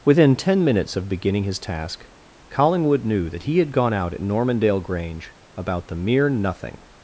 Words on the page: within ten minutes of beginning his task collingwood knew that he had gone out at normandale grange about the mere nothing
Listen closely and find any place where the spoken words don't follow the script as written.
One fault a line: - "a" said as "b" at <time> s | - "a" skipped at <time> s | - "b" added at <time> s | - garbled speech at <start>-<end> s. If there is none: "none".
none